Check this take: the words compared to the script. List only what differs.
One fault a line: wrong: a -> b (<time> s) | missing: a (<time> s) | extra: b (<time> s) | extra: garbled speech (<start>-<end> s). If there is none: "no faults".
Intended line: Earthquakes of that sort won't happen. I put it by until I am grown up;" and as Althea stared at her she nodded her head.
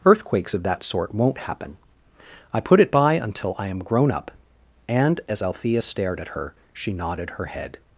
no faults